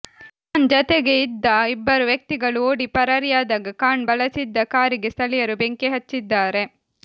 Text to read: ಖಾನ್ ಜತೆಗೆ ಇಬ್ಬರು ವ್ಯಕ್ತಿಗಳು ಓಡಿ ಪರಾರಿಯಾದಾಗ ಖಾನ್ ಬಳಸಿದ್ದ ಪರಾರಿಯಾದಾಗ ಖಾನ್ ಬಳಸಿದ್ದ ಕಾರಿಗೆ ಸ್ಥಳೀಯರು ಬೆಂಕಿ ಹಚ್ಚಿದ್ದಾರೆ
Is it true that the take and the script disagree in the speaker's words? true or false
true